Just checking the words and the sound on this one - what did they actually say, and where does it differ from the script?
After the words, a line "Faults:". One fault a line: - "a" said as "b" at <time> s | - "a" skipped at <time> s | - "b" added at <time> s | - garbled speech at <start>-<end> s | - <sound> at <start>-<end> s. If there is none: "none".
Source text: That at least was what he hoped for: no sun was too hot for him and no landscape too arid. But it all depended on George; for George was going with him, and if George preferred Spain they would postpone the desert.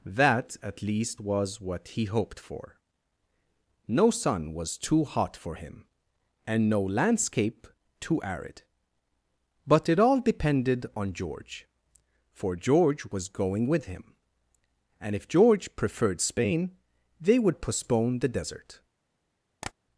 That at least was what he hoped for: no sun was too hot for him and no landscape too arid. But it all depended on George; for George was going with him, and if George preferred Spain they would postpone the desert.
Faults:
- tap at 19.6-19.7 s